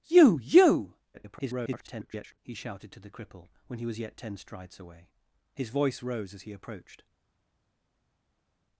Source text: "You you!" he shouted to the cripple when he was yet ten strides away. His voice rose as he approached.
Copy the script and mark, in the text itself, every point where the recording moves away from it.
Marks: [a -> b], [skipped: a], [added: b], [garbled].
"You you!" [garbled] he shouted to the cripple when he was yet ten strides away. His voice rose as he approached.